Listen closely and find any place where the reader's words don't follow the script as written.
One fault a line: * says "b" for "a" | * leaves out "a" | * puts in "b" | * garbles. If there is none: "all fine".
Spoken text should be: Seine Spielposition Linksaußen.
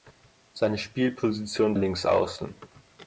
all fine